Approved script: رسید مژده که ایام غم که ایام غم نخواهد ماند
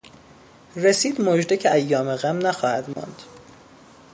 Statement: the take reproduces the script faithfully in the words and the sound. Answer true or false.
false